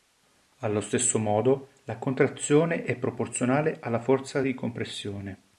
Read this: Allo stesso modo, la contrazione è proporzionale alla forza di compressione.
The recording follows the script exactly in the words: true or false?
true